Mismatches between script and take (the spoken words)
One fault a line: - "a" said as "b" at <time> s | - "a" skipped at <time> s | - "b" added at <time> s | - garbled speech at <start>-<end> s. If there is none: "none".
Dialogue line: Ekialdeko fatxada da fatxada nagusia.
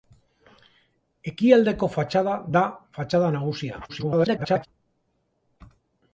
- garbled speech at 3.9-4.7 s